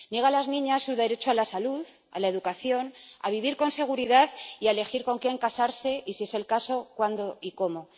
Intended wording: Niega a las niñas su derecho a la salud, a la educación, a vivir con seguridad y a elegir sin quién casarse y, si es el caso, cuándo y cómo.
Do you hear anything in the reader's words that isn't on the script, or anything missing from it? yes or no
yes